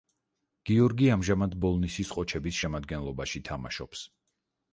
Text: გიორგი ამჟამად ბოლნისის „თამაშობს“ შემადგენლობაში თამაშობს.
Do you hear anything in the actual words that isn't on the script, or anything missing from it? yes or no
yes